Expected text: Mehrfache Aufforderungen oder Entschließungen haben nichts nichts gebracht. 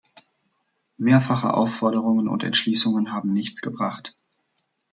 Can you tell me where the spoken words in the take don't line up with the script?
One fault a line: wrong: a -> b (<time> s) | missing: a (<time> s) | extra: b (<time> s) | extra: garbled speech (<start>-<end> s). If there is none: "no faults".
wrong: oder -> und (2.3 s)
missing: nichts (3.6 s)